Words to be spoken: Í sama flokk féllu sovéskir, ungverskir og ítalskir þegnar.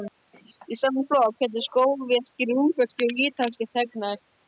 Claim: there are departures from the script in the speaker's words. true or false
false